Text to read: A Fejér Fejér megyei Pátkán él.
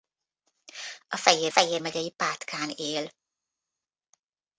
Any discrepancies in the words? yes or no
no